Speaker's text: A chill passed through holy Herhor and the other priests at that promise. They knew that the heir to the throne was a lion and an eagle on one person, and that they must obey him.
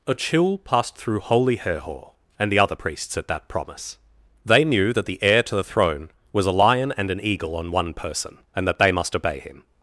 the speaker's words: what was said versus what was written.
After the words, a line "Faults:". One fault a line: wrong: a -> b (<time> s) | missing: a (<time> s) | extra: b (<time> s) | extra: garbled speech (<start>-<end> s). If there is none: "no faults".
A chill passed through holy Herhor and the other priests at that promise. They knew that the heir to the throne was a lion and an eagle on one person, and that they must obey him.
Faults:
no faults